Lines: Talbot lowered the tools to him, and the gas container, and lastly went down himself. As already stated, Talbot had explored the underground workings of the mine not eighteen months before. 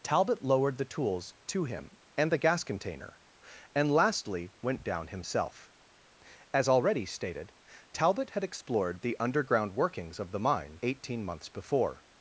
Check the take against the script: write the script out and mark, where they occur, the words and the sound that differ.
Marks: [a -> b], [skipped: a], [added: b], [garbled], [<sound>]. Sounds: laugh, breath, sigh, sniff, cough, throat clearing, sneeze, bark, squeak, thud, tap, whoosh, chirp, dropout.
Talbot lowered the tools to him, and the gas container, and lastly went down himself. As already stated, Talbot had explored the underground workings of the mine [skipped: not] eighteen months before.